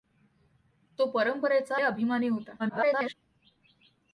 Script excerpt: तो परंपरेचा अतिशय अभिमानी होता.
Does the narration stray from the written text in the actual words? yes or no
yes